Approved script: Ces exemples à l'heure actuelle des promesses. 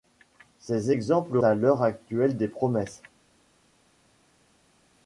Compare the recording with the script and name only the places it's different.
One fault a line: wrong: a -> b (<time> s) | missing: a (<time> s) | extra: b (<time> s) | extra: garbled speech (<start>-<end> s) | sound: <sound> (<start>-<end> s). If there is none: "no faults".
no faults